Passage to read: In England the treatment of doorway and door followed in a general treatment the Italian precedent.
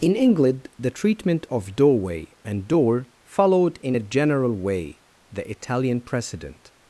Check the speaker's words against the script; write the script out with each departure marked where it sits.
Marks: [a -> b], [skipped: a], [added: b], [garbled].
In England the treatment of doorway and door followed in a general [treatment -> way] the Italian precedent.